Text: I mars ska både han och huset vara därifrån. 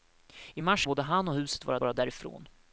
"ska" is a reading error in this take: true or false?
true